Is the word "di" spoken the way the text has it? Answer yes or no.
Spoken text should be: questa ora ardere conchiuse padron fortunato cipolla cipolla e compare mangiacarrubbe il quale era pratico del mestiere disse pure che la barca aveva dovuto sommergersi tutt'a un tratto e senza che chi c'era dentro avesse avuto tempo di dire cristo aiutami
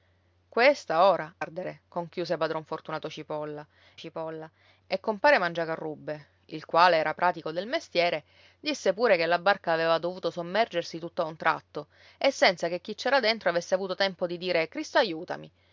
yes